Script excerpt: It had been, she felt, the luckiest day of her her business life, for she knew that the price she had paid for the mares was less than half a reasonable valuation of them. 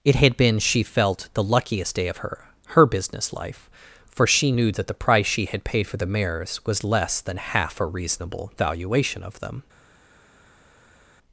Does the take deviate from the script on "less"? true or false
false